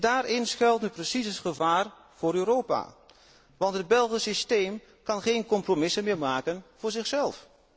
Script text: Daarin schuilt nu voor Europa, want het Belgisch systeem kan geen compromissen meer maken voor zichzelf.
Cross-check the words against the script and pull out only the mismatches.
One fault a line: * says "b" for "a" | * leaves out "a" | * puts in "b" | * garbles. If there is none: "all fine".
* puts in "precies het gevaar"